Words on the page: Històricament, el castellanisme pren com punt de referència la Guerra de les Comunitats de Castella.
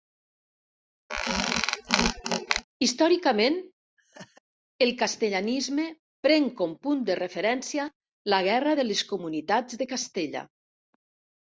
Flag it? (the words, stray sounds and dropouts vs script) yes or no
yes